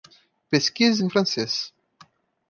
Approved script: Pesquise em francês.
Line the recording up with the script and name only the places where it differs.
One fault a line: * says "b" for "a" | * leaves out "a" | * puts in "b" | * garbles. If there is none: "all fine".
all fine